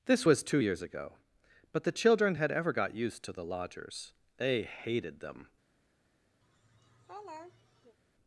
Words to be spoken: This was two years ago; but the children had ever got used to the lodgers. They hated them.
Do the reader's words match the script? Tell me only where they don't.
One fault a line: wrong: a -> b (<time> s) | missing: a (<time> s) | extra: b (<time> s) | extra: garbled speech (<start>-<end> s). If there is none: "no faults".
no faults